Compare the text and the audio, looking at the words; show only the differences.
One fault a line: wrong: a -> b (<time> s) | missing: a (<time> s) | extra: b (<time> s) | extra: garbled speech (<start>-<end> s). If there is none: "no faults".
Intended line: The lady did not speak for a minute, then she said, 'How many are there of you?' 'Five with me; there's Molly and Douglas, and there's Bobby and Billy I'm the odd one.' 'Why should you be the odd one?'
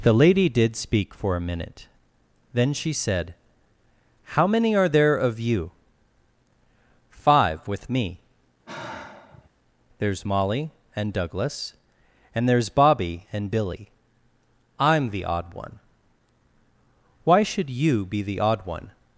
missing: not (0.8 s)